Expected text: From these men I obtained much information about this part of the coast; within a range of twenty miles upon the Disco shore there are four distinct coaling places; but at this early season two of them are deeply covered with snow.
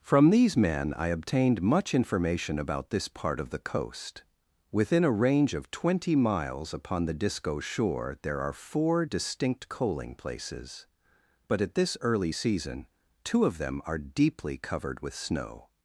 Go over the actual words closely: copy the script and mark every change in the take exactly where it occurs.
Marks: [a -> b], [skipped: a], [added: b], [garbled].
From these men I obtained much information about this part of the coast; within a range of twenty miles upon the Disco shore there are four distinct coaling places; but at this early season two of them are deeply covered with snow.